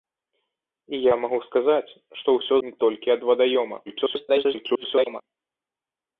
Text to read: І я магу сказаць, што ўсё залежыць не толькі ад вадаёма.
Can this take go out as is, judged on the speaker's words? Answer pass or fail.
fail